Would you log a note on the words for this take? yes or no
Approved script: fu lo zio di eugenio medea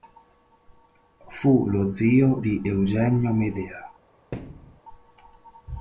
no